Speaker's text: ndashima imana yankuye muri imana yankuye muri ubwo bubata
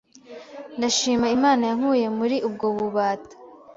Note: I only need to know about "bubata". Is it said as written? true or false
true